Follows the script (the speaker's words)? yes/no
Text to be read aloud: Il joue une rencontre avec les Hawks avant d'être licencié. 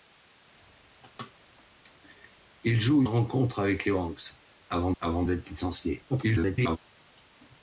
no